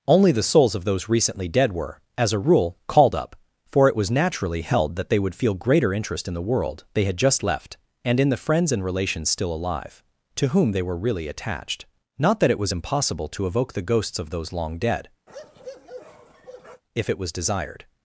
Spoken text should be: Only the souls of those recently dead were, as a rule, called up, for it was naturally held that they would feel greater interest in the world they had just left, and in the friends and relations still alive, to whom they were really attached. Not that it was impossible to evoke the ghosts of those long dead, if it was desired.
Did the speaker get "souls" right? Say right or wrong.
right